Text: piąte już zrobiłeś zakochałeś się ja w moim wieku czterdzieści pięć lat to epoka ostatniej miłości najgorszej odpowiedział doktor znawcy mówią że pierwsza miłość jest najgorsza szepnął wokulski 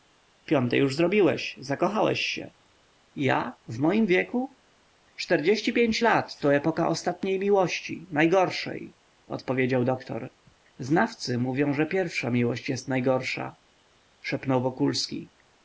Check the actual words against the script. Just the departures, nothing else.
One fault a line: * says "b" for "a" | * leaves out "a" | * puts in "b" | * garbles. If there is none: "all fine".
all fine